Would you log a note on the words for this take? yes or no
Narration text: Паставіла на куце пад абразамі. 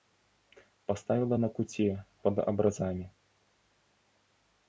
no